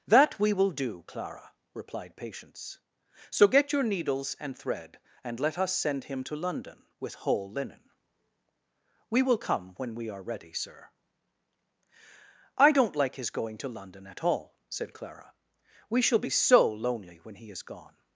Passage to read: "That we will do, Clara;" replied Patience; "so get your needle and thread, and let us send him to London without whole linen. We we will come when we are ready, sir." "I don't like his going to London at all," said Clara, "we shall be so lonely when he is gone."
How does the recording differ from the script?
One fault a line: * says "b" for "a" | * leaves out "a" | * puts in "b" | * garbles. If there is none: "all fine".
* says "needles" for "needle"
* says "with" for "without"
* leaves out "we"